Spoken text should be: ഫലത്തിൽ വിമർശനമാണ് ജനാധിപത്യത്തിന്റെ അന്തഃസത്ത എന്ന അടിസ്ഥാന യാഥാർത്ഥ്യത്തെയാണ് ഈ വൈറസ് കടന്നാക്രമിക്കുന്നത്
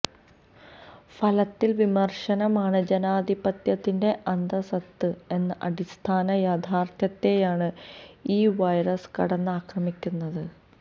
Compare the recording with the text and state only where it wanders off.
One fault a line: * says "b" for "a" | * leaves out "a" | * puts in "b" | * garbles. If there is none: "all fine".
all fine